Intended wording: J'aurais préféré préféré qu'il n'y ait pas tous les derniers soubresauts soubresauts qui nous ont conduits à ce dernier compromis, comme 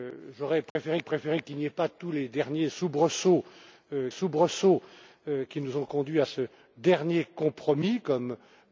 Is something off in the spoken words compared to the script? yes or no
no